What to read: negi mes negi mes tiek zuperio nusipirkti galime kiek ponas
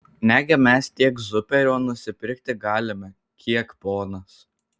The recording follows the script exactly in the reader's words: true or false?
false